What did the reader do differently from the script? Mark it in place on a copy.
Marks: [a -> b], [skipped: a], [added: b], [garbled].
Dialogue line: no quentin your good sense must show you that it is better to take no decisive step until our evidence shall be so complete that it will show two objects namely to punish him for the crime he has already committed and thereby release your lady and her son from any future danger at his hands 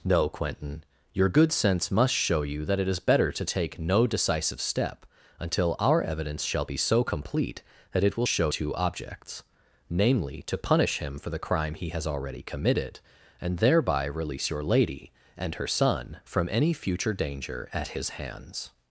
no quentin your good sense must show you that it is better to take no decisive step until our evidence shall be so complete that it will show two objects namely to punish him for the crime he has already committed and thereby release your lady and her son from any future danger at his hands